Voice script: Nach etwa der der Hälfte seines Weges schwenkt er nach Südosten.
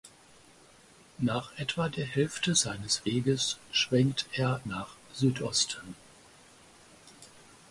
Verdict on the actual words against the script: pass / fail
fail